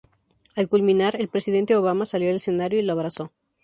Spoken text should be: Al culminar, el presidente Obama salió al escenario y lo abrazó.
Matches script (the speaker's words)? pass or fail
pass